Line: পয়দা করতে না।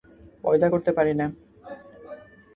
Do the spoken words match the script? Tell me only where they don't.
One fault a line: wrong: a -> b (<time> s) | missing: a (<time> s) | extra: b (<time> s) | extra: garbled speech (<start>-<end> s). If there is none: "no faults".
extra: পারি (0.9 s)